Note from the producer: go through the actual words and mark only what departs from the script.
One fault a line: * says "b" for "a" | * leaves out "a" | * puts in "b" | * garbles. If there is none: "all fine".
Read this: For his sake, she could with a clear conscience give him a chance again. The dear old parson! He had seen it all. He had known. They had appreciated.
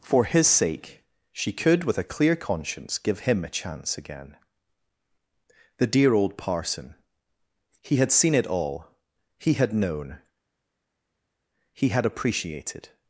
* says "He" for "They"